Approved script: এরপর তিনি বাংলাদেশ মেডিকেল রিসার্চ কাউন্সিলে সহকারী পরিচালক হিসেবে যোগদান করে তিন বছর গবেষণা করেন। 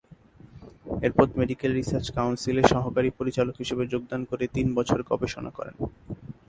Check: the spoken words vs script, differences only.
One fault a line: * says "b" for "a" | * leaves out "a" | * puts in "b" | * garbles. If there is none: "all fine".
* leaves out "তিনি বাংলাদেশ"